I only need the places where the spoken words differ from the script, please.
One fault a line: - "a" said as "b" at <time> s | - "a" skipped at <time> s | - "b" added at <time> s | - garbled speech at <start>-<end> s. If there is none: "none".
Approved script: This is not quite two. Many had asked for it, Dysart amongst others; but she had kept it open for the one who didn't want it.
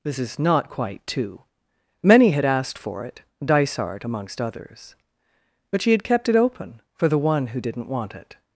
none